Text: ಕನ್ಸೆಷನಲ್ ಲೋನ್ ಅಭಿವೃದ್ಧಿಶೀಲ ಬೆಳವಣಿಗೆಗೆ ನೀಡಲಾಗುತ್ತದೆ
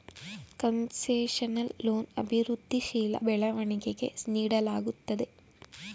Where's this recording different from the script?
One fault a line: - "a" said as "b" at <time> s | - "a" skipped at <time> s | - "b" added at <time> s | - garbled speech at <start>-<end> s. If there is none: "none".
none